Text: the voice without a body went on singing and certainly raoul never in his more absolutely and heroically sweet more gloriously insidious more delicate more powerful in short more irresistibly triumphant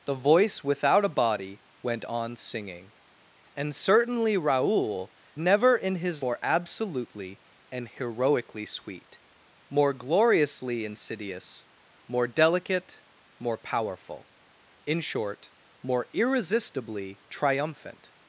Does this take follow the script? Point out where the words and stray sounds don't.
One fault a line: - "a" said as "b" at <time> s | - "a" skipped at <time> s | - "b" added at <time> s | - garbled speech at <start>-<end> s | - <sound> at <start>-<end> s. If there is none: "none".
none